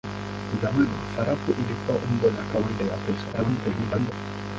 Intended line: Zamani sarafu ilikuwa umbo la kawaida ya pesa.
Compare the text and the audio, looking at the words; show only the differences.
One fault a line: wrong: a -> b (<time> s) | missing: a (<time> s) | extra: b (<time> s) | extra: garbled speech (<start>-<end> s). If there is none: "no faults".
extra: garbled speech (3.3-4.1 s)